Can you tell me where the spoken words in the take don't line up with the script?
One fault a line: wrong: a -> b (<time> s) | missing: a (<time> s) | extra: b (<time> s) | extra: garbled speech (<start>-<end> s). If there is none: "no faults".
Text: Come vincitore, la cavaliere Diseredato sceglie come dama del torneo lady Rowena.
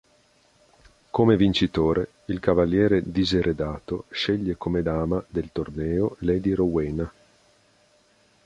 wrong: la -> il (2.2 s)